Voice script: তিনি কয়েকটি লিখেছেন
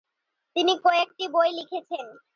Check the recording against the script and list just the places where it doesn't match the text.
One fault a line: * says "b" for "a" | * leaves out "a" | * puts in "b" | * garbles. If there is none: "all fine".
* puts in "বই"